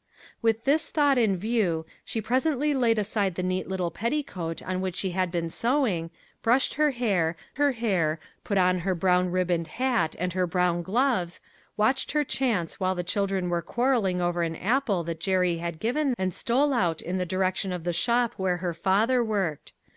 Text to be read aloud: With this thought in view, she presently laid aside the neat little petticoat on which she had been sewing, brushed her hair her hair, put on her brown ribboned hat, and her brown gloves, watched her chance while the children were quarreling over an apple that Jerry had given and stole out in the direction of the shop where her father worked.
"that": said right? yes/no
yes